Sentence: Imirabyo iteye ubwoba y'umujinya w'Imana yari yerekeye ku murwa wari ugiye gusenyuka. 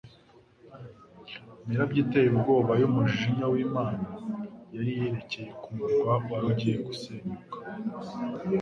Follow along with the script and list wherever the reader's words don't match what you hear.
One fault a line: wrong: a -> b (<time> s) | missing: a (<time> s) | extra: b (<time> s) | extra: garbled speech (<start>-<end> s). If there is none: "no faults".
no faults